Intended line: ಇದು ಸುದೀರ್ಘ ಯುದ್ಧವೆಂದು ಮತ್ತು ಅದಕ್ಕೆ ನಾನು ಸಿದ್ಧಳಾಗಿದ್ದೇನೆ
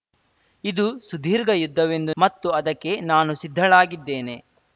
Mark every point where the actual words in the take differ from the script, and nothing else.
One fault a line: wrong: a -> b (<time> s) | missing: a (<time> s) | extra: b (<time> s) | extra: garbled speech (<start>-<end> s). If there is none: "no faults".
no faults